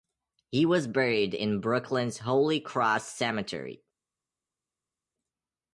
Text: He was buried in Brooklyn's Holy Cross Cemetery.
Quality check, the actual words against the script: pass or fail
pass